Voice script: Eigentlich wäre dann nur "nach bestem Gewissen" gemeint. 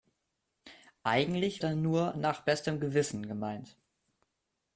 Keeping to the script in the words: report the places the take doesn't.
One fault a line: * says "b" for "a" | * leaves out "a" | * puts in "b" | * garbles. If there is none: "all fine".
* leaves out "wäre"